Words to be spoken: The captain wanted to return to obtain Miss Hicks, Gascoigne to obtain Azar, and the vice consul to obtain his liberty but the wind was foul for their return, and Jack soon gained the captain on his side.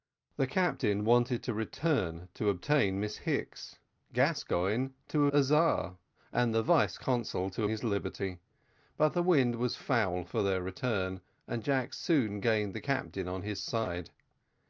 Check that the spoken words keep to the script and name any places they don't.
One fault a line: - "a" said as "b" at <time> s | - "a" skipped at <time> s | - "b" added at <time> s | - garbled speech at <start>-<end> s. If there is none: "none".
- "obtain" skipped at 5.3 s
- "obtain" skipped at 7.6 s